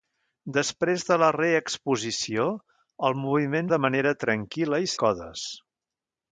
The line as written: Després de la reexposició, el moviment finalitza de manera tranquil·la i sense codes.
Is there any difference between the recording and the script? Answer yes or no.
yes